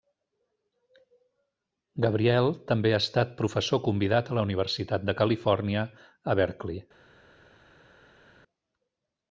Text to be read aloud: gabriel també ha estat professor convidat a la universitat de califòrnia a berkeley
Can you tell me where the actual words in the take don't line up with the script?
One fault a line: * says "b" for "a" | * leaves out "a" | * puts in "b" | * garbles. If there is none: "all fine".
all fine